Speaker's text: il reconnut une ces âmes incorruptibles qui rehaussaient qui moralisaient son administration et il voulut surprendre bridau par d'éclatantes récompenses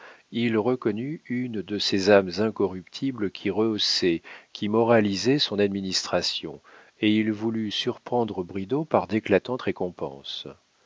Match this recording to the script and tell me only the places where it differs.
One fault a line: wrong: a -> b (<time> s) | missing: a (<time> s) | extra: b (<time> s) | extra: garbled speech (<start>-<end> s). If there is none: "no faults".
extra: de (1.6 s)